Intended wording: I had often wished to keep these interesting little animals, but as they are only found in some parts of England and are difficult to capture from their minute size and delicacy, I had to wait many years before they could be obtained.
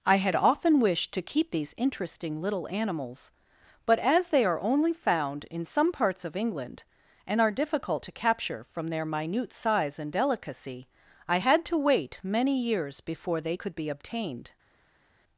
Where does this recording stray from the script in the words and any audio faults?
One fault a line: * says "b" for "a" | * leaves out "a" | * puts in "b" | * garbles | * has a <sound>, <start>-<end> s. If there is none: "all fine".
all fine